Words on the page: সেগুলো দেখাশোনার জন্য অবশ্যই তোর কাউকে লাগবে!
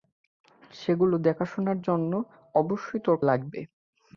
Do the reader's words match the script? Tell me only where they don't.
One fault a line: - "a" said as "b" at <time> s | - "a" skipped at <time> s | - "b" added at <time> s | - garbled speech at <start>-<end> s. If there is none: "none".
- "কাউকে" skipped at 3.2 s